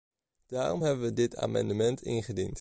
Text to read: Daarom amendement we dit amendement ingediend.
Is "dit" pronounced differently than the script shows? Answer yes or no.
no